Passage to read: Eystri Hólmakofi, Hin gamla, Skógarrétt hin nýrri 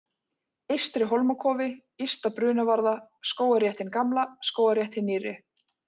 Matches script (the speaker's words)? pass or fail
fail